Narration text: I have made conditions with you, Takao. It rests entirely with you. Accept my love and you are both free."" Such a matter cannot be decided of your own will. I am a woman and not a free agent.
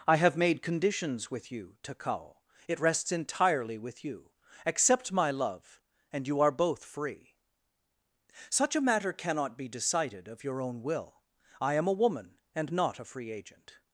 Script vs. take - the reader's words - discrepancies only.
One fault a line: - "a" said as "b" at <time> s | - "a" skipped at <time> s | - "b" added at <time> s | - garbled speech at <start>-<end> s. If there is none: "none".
none